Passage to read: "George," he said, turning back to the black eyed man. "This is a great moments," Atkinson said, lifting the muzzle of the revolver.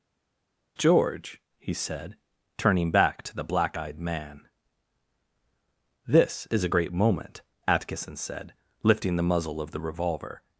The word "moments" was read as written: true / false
false